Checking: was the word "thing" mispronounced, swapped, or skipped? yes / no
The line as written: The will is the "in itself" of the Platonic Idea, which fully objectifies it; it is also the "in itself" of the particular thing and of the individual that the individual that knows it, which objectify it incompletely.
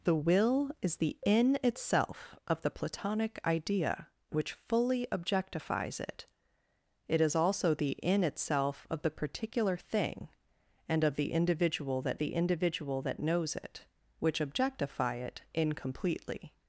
no